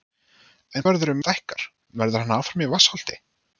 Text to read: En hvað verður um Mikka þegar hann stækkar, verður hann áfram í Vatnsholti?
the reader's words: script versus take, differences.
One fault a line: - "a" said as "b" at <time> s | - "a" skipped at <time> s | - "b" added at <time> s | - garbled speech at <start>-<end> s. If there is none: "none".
- "hvað" skipped at 0.8 s
- "Mikka þegar" skipped at 1.2 s